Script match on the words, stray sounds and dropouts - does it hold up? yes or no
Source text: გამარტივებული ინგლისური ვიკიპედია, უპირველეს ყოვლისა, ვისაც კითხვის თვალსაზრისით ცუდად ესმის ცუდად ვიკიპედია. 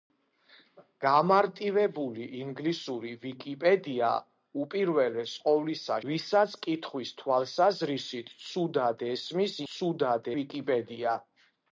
yes